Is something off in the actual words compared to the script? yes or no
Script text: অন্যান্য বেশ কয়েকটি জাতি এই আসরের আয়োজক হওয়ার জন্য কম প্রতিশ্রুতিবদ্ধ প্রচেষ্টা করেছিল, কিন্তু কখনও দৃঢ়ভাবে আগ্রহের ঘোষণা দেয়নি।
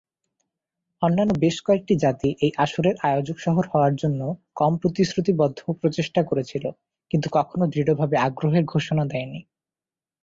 yes